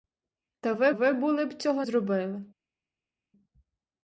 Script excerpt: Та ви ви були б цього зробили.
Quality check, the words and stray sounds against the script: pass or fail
pass